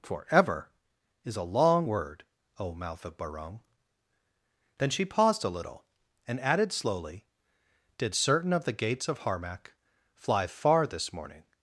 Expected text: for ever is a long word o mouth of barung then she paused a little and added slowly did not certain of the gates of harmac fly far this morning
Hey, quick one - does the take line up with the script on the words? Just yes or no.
no